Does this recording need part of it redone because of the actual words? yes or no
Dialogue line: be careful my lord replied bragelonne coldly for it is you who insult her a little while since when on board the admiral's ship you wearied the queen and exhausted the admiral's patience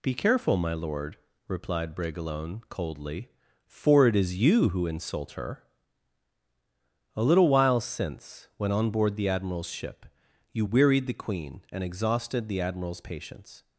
no